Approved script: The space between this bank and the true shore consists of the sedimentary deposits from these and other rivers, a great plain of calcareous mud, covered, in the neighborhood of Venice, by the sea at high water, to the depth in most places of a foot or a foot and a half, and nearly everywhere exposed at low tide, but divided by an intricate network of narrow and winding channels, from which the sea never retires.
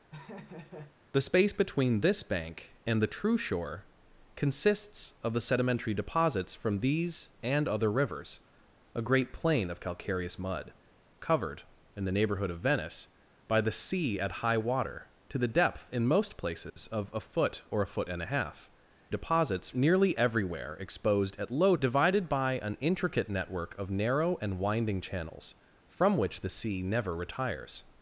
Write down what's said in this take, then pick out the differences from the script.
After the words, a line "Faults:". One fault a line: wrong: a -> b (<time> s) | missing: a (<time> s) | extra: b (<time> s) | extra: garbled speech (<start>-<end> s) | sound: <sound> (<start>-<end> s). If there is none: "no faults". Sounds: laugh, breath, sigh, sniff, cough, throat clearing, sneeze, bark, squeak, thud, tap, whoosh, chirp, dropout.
The space between this bank and the true shore consists of the sedimentary deposits from these and other rivers, a great plain of calcareous mud, covered, in the neighborhood of Venice, by the sea at high water, to the depth in most places of a foot or a foot and a half, deposits nearly everywhere exposed at low divided by an intricate network of narrow and winding channels, from which the sea never retires.
Faults:
sound: laugh (0.1-1.0 s)
sound: dropout (16.7-16.8 s)
wrong: and -> deposits (19.1 s)
missing: tide but (21.7 s)